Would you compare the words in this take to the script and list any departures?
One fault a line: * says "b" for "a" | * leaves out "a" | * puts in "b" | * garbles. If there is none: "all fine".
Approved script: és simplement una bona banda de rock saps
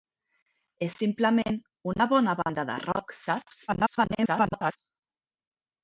* garbles